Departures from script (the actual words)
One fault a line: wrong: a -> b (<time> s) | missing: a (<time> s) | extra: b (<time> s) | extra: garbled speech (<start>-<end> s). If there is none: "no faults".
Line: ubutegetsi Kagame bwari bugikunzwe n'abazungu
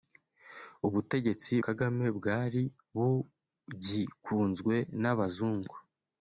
no faults